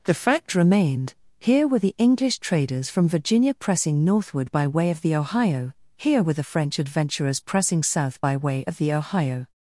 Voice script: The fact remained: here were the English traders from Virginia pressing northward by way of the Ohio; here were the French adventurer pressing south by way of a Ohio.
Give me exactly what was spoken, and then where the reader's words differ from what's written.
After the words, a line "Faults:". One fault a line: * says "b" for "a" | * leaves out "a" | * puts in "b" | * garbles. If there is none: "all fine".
The fact remained: here were the English traders from Virginia pressing northward by way of the Ohio; here were the French adventurers pressing south by way of the Ohio.
Faults:
* says "adventurers" for "adventurer"
* says "the" for "a"